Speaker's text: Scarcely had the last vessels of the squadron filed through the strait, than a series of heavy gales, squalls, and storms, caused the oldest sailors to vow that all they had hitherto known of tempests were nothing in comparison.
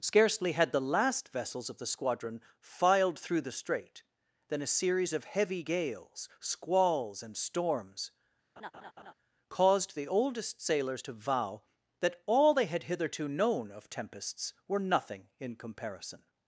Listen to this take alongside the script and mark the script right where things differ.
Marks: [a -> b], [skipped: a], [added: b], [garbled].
Scarcely had the last vessels of the squadron filed through the strait, than a series of heavy gales, squalls, and storms, caused the oldest sailors to vow that all they had hitherto known of tempests were nothing in comparison.